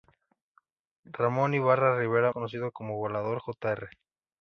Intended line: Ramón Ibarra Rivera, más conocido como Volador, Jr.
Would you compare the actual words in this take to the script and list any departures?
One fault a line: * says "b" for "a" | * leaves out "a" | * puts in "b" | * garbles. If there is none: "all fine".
* leaves out "más"